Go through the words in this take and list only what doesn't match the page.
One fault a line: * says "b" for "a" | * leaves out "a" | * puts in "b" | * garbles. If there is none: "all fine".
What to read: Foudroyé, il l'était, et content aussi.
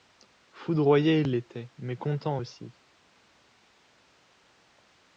* says "mais" for "et"